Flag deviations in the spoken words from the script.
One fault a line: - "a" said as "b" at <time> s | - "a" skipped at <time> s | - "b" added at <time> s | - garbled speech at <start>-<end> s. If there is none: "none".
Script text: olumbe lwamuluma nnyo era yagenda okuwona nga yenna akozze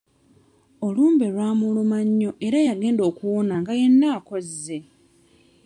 none